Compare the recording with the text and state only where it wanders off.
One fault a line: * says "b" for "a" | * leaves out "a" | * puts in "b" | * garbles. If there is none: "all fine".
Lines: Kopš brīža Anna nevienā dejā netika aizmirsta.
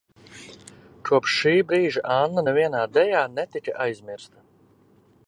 * puts in "šī"